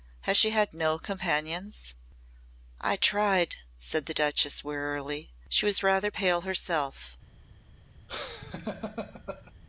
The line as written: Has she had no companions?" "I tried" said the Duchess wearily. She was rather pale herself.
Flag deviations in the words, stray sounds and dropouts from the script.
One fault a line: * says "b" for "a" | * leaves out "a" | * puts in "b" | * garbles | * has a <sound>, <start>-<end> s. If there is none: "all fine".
* has a laugh, 8.1-9.5 s